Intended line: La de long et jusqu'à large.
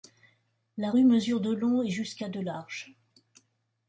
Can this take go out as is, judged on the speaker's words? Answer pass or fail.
fail